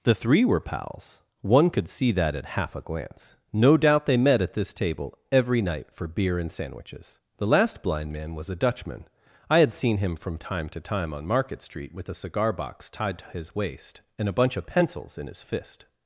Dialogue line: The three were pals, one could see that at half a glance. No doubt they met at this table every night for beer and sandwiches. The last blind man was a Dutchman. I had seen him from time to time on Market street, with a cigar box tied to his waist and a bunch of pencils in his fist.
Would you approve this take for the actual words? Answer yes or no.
yes